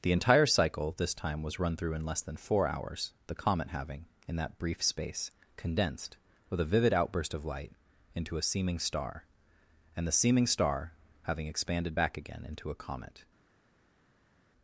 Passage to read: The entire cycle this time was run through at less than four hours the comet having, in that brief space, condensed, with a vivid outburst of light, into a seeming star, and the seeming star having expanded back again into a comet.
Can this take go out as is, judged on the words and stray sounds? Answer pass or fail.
fail